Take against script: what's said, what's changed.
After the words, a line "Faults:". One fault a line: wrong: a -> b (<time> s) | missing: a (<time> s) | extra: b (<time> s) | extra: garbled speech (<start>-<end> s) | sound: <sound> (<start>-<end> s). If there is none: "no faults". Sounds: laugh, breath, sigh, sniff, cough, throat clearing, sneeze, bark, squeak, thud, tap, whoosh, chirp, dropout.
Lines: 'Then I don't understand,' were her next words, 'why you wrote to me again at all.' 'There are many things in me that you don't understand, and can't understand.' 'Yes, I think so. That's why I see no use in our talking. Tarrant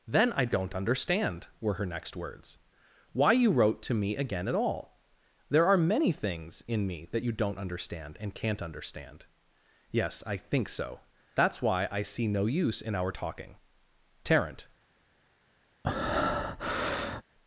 'Then I don't understand,' were her next words, 'why you wrote to me again at all.' 'There are many things in me that you don't understand, and can't understand.' 'Yes, I think so. That's why I see no use in our talking. Tarrant
Faults:
sound: breath (15.8-17.2 s)